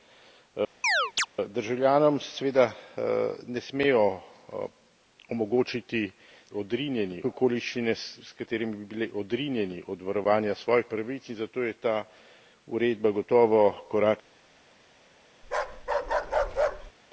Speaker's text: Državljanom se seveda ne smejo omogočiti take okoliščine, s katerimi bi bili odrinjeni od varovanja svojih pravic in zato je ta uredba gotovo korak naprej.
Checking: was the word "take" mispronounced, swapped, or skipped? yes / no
yes